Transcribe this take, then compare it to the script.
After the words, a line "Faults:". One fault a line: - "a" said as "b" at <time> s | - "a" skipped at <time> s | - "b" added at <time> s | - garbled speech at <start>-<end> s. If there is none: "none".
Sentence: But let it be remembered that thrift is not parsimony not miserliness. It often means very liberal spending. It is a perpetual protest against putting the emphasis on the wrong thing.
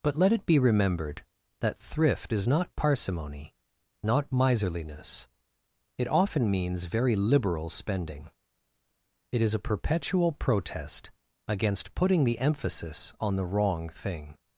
But let it be remembered that thrift is not parsimony not miserliness. It often means very liberal spending. It is a perpetual protest against putting the emphasis on the wrong thing.
Faults:
none